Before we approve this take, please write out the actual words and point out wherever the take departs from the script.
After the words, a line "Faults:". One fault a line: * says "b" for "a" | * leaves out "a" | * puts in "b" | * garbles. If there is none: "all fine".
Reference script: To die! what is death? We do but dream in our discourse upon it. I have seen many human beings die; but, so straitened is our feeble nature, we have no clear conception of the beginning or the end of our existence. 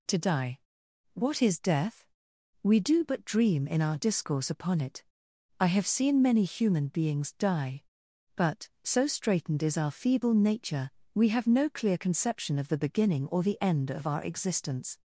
To die! what is death? We do but dream in our discourse upon it. I have seen many human beings die; but, so straitened is our feeble nature, we have no clear conception of the beginning or the end of our existence.
Faults:
all fine